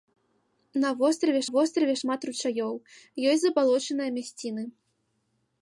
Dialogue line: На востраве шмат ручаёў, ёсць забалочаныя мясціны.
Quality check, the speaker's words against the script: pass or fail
fail